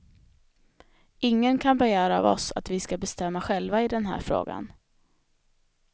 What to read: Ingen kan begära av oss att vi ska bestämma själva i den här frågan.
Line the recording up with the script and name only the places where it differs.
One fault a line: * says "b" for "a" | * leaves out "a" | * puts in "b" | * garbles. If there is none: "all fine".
all fine